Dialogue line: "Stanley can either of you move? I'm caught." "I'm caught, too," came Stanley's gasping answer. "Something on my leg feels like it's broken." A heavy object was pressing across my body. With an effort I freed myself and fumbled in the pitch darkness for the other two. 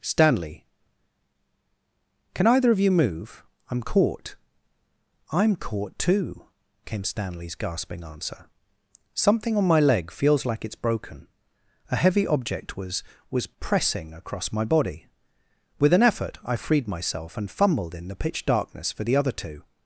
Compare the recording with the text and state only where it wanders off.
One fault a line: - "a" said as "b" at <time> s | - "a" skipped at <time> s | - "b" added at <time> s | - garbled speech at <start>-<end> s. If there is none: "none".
- "was" added at 13.3 s